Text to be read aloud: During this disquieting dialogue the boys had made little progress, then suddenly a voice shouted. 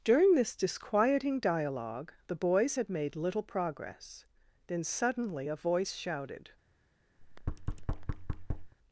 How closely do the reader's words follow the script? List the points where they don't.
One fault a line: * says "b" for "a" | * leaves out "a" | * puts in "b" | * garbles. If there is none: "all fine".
all fine